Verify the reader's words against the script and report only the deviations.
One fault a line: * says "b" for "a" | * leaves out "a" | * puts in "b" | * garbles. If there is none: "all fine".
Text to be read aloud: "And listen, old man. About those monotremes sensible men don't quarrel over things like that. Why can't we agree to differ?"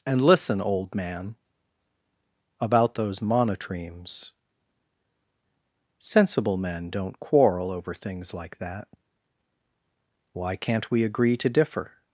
all fine